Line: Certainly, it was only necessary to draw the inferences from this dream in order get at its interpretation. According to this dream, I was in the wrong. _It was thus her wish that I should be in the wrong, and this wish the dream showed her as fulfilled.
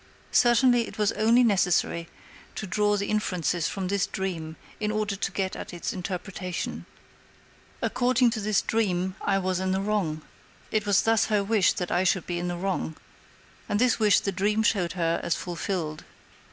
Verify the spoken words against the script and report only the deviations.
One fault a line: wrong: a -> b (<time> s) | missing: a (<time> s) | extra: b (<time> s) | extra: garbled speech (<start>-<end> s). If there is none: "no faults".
extra: to (5.1 s)